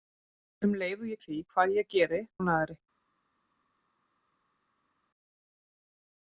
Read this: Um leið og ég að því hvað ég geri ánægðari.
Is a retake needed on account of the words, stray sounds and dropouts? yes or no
no